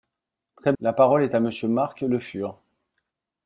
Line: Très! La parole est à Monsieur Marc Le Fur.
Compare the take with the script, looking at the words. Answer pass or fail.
pass